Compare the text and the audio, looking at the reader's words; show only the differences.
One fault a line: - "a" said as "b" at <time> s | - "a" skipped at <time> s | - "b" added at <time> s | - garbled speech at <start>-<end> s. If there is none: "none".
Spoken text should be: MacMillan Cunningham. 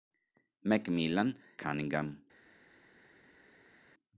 none